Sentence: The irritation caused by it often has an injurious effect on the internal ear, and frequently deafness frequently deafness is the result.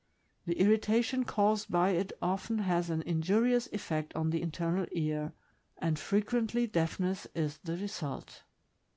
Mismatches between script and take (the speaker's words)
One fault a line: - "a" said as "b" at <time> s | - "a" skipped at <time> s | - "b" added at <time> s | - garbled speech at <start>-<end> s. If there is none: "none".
- "frequently deafness" skipped at 7.3 s